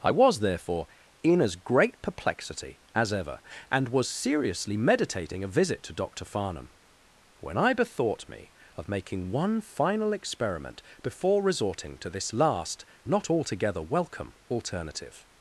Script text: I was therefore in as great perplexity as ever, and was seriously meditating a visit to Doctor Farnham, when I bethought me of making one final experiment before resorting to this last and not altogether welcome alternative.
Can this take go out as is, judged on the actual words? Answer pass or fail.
fail